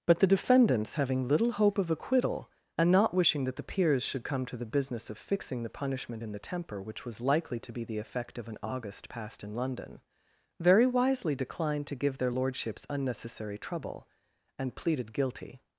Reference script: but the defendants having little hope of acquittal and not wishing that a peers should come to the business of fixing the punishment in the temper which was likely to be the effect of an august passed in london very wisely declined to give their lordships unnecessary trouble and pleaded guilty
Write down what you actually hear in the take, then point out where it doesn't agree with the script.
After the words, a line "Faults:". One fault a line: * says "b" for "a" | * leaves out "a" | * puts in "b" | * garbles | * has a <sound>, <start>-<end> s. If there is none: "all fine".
but the defendants having little hope of acquittal and not wishing that the peers should come to the business of fixing the punishment in the temper which was likely to be the effect of an august passed in london very wisely declined to give their lordships unnecessary trouble and pleaded guilty
Faults:
* says "the" for "a"